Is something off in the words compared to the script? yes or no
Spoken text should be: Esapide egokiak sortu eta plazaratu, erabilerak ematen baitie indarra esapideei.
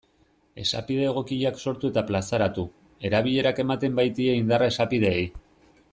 no